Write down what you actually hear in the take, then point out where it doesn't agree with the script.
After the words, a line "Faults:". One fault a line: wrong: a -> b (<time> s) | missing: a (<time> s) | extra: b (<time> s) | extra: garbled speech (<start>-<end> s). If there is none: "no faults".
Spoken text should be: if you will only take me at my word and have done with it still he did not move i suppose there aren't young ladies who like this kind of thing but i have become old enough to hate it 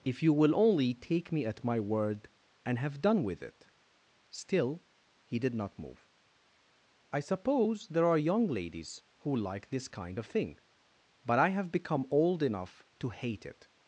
if you will only take me at my word and have done with it still he did not move i suppose there are young ladies who like this kind of thing but i have become old enough to hate it
Faults:
wrong: aren't -> are (8.1 s)